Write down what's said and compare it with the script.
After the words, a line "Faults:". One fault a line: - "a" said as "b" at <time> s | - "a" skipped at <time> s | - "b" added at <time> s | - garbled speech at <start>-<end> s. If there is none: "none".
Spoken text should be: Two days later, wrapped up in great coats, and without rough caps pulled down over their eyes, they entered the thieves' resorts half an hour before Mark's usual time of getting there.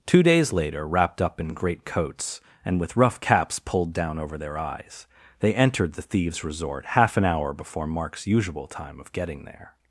Two days later, wrapped up in great coats, and with rough caps pulled down over their eyes, they entered the thieves' resort half an hour before Mark's usual time of getting there.
Faults:
- "without" said as "with" at 2.8 s
- "resorts" said as "resort" at 6.4 s